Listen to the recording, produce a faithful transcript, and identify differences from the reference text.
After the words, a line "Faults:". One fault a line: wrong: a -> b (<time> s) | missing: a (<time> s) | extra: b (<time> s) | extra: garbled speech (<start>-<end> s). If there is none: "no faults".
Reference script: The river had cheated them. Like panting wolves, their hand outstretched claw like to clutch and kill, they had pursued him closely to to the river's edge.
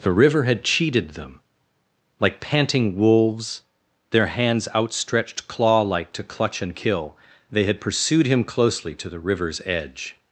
The river had cheated them. Like panting wolves, their hands outstretched claw like to clutch and kill, they had pursued him closely to the river's edge.
Faults:
wrong: hand -> hands (4.3 s)
missing: to (9.1 s)